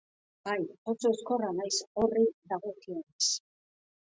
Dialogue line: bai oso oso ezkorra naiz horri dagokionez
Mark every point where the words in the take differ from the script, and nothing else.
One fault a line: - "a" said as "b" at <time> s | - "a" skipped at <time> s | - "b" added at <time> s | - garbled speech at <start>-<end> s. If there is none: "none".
- "oso" skipped at 1.1 s